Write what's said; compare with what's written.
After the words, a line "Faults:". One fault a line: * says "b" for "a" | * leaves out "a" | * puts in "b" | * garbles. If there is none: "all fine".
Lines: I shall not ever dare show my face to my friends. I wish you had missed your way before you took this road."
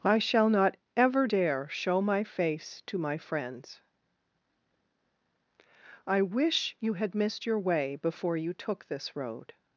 I shall not ever dare show my face to my friends. I wish you had missed your way before you took this road."
Faults:
all fine